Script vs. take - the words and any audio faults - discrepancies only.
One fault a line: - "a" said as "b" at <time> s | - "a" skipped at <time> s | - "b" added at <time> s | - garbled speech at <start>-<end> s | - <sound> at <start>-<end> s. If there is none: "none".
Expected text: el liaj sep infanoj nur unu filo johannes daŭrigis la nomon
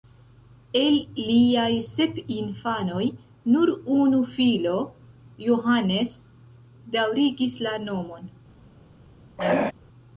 - throat clearing at 9.4-9.7 s